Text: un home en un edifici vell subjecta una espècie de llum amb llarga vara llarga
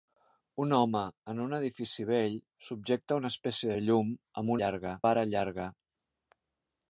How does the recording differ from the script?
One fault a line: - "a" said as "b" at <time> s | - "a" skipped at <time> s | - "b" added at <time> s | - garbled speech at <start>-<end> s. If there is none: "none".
none